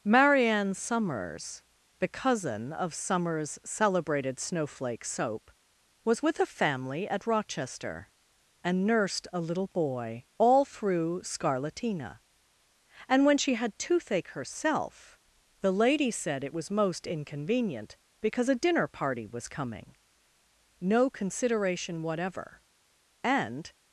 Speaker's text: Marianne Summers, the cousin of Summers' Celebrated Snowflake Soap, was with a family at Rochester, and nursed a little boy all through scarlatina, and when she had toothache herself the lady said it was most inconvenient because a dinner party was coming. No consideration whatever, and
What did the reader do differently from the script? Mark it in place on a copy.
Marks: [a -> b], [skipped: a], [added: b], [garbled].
Marianne Summers, the cousin of Summers' Celebrated Snowflake Soap, was with a family at Rochester, and nursed a little boy all through scarlatina, and when she had toothache herself the lady said it was most inconvenient because a dinner party was coming. No consideration whatever, and